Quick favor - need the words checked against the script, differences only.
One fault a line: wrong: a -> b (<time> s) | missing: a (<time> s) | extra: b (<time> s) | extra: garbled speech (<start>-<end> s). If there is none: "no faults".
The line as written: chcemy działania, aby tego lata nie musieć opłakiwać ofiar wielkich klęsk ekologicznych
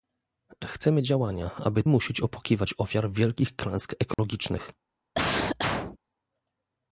missing: tego lata nie (1.8 s)